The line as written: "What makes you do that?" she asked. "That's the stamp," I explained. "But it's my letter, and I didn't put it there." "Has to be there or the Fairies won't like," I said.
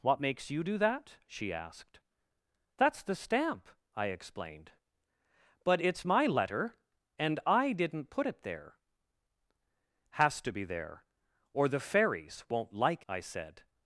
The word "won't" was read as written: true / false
true